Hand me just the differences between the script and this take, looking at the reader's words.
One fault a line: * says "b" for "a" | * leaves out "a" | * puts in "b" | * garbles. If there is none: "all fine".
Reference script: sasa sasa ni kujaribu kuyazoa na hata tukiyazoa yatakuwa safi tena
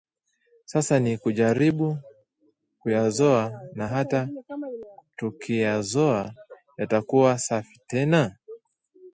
* leaves out "sasa"